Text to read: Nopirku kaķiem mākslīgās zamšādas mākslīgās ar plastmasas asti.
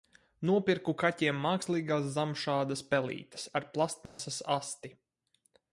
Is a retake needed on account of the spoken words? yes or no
yes